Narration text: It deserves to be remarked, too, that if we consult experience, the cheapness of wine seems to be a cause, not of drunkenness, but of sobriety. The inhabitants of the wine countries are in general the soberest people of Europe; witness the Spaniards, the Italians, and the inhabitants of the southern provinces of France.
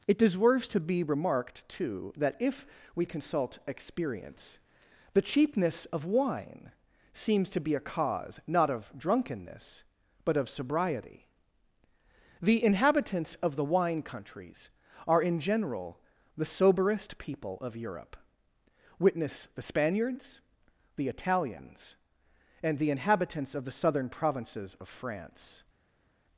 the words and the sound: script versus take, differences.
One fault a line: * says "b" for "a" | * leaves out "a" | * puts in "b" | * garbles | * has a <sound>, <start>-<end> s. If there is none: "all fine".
all fine